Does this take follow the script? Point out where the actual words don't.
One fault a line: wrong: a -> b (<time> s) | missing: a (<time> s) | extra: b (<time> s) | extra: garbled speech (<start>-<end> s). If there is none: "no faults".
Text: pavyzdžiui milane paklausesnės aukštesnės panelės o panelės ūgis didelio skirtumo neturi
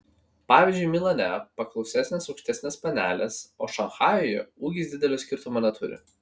wrong: panelės -> šanchajuje (3.8 s)